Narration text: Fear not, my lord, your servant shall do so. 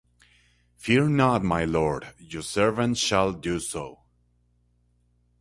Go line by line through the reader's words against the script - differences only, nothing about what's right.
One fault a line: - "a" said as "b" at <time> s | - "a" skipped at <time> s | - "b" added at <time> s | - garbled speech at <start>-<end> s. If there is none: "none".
none